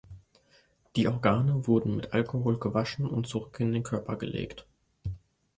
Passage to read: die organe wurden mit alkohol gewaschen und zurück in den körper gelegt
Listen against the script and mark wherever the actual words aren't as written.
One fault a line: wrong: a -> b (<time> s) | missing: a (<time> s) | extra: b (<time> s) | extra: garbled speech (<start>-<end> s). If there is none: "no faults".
no faults